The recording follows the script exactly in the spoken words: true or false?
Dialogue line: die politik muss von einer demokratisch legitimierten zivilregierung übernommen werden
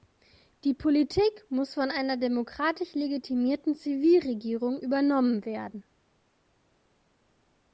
true